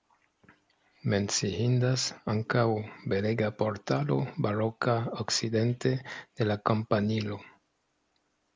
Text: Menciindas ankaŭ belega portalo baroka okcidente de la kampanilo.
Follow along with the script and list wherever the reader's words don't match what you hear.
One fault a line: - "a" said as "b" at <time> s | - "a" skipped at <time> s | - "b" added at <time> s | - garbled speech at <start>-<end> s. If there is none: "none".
none